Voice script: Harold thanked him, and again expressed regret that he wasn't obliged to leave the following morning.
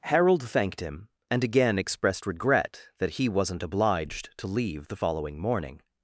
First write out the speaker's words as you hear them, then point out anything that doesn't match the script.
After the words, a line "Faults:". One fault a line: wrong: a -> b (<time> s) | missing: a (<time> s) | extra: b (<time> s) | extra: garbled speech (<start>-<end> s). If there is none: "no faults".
Harold thanked him, and again expressed regret that he wasn't obliged to leave the following morning.
Faults:
no faults